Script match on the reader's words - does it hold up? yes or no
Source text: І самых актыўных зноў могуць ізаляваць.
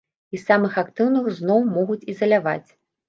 yes